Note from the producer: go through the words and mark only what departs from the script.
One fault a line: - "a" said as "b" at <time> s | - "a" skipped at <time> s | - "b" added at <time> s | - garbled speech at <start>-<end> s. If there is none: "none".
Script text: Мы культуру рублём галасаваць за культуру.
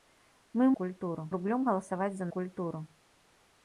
none